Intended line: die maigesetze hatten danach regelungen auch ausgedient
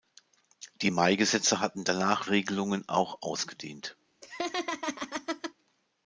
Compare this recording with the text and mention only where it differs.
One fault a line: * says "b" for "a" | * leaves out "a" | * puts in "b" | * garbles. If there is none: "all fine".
all fine